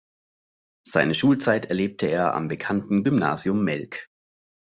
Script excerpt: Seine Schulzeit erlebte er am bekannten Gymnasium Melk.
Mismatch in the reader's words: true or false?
false